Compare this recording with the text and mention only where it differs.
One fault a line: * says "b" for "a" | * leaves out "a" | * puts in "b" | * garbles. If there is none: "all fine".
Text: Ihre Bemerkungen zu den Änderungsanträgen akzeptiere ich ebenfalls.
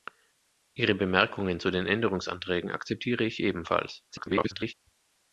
* garbles